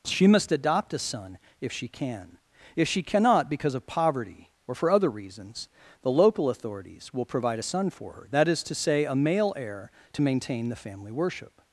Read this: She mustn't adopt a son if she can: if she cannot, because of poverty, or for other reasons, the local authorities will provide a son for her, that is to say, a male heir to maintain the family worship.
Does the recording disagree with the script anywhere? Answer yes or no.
yes